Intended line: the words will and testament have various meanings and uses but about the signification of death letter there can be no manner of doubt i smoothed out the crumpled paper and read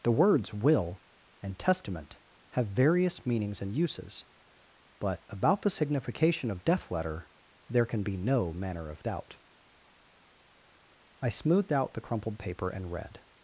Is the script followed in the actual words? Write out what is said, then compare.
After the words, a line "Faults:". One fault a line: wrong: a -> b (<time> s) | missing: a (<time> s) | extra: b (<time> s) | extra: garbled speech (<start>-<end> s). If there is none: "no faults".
the words will and testament have various meanings and uses but about the signification of death letter there can be no manner of doubt i smoothed out the crumpled paper and read
Faults:
no faults